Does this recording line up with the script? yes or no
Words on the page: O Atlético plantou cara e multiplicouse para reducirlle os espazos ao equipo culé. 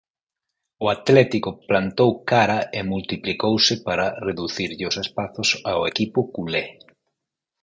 yes